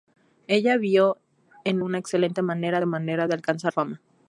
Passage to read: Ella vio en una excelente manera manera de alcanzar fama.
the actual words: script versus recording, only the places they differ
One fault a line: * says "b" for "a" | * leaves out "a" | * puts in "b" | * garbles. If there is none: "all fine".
all fine